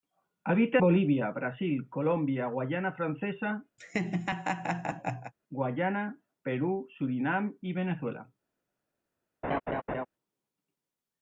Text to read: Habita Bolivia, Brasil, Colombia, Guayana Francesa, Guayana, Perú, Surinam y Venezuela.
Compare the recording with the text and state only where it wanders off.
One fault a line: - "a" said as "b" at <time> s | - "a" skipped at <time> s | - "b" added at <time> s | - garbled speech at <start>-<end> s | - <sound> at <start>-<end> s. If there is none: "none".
- laugh at 3.8-5.3 s
- laugh at 9.4-10.1 s